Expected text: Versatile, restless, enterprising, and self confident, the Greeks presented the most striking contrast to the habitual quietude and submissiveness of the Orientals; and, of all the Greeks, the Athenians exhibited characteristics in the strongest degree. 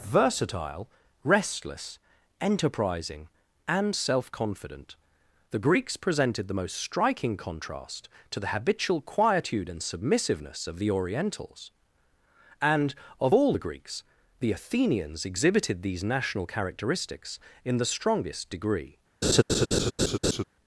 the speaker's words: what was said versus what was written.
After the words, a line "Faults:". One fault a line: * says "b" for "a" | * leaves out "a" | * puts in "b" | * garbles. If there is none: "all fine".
Versatile, restless, enterprising, and self confident, the Greeks presented the most striking contrast to the habitual quietude and submissiveness of the Orientals; and, of all the Greeks, the Athenians exhibited these national characteristics in the strongest degree.
Faults:
* puts in "these national"